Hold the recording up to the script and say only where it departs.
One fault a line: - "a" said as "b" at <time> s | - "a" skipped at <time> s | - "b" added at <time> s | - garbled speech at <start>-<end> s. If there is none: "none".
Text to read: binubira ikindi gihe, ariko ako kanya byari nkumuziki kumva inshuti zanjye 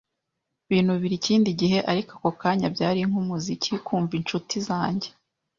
none